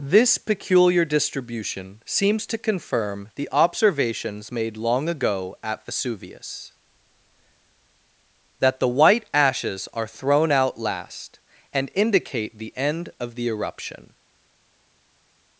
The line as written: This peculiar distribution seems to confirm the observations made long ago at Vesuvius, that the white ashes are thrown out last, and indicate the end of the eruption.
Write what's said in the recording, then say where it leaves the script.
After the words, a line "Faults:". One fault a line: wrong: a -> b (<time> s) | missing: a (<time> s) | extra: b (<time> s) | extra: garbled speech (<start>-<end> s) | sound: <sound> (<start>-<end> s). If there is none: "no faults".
This peculiar distribution seems to confirm the observations made long ago at Vesuvius, that the white ashes are thrown out last, and indicate the end of the eruption.
Faults:
no faults